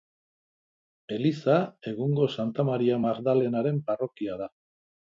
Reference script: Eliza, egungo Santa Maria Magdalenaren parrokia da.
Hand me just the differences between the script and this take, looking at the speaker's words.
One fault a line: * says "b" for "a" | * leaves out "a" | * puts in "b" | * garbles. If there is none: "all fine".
all fine